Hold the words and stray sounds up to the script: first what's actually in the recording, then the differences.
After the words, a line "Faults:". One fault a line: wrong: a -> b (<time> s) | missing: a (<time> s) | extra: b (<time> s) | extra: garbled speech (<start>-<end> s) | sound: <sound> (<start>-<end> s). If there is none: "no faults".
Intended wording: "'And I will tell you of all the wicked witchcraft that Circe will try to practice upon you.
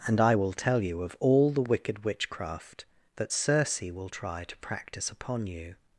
"'And I will tell you of all the wicked witchcraft that Circe will try to practice upon you.
Faults:
no faults